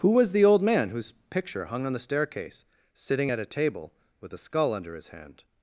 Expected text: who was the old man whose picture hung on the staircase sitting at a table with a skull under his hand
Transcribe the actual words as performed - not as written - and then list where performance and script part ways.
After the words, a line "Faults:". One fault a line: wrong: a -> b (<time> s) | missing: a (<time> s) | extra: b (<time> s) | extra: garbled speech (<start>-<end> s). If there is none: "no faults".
who was the old man whose picture hung on the staircase sitting at a table with a skull under his hand
Faults:
no faults